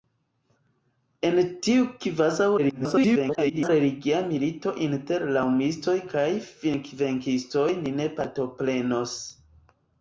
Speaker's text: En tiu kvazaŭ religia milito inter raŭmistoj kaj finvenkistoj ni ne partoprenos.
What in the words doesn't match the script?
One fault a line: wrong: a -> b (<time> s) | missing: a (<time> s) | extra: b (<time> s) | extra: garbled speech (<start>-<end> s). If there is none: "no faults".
extra: garbled speech (2.6-3.7 s)